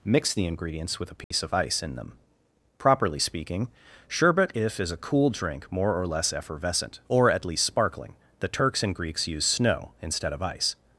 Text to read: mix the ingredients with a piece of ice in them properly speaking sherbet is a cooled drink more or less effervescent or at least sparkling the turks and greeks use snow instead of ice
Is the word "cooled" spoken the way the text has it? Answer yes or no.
no